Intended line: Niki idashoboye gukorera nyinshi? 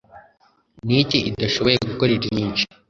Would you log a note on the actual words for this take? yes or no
no